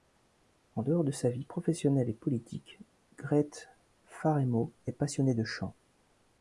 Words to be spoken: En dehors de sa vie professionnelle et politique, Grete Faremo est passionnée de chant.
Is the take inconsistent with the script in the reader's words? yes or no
no